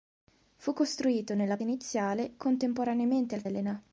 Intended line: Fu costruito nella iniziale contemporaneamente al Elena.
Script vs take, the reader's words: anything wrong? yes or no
no